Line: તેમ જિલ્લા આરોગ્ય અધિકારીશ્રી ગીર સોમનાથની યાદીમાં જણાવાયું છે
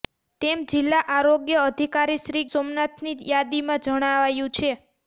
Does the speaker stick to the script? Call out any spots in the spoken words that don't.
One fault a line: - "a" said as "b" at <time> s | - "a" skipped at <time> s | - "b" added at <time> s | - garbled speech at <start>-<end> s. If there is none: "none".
- "ગીર" skipped at 2.4 s